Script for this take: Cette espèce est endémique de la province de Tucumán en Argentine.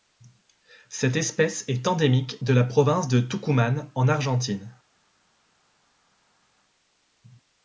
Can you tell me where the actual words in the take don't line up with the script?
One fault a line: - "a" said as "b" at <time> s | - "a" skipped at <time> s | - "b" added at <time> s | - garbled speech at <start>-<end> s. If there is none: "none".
none